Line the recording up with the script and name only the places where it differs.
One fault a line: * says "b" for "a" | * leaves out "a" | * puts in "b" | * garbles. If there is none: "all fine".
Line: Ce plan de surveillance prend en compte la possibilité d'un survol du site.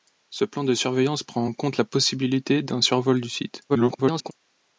* garbles